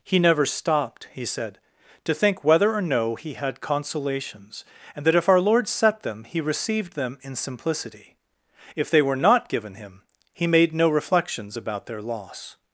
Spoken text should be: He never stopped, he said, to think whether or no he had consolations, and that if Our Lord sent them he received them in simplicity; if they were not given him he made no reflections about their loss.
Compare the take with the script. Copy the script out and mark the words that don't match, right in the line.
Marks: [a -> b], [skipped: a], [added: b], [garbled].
He never stopped, he said, to think whether or no he had consolations, and that if Our Lord [sent -> set] them he received them in simplicity; if they were not given him he made no reflections about their loss.